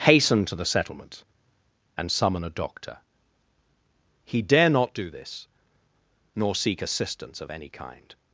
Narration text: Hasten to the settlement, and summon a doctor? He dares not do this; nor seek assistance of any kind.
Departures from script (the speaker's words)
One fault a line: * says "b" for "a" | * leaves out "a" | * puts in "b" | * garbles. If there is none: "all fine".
* says "dare" for "dares"